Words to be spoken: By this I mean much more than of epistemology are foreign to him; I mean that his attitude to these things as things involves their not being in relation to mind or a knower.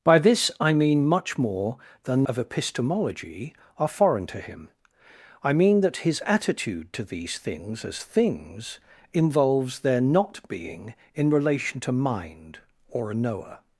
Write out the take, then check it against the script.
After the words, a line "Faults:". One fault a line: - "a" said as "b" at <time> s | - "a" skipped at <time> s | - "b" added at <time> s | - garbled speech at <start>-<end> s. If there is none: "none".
By this I mean much more than of epistemology are foreign to him; I mean that his attitude to these things as things involves their not being in relation to mind or a knower.
Faults:
none